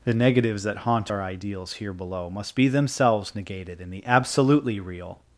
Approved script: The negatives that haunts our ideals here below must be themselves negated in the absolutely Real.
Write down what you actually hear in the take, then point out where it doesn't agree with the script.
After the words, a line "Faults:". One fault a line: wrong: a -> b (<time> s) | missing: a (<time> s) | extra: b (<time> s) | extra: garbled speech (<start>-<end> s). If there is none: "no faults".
The negatives that haunt our ideals here below must be themselves negated in the absolutely Real.
Faults:
wrong: haunts -> haunt (0.8 s)